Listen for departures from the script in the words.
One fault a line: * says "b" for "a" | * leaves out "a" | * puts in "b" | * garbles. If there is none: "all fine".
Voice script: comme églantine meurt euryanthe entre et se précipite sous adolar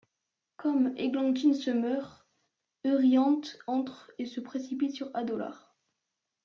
* puts in "se"
* says "sur" for "sous"